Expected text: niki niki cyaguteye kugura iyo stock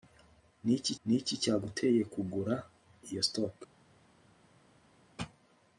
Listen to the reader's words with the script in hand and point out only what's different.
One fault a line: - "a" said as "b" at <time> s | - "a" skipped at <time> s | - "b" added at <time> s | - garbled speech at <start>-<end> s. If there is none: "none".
none